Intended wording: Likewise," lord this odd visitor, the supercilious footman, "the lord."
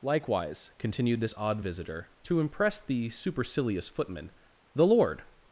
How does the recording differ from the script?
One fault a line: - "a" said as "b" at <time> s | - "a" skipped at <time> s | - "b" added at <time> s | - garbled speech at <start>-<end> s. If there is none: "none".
- "lord" said as "continued" at 0.8 s
- "to impress" added at 2.2 s